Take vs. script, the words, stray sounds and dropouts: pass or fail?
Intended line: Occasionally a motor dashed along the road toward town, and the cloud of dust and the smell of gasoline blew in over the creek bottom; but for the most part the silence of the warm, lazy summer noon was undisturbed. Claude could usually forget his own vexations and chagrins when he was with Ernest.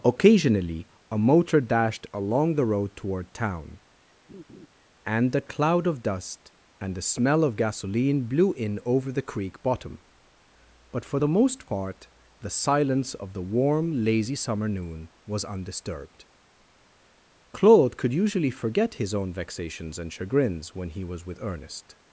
fail